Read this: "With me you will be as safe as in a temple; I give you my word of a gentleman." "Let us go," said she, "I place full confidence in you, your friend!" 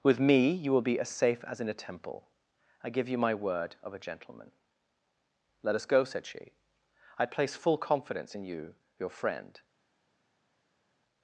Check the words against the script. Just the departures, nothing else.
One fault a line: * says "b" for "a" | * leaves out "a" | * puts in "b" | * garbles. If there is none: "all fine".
all fine